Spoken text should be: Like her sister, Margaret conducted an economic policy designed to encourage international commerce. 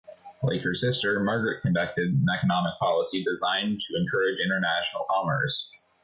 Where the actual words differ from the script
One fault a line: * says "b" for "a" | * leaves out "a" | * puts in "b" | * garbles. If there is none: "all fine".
all fine